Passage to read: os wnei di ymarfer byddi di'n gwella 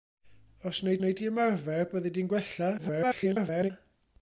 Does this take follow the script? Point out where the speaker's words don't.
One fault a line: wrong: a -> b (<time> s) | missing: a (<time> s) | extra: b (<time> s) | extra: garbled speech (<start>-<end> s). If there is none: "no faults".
extra: wnei (1.0 s)
extra: garbled speech (2.8-3.7 s)